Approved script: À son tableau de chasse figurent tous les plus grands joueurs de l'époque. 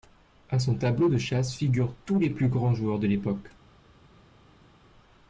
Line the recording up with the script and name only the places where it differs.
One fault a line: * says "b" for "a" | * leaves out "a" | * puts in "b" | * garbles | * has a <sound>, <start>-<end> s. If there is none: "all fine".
all fine